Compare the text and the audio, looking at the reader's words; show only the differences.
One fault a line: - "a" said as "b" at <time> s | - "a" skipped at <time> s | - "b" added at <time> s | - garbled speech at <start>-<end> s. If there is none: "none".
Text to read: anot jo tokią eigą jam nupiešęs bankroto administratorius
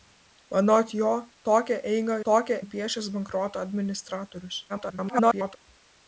- "jam" said as "tokią" at 2.3 s
- garbled speech at 4.7-5.6 s